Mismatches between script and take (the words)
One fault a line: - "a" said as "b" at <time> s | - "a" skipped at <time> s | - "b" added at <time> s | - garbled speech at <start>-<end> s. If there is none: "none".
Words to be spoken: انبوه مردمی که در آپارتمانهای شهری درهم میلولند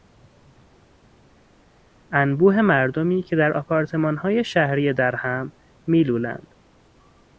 none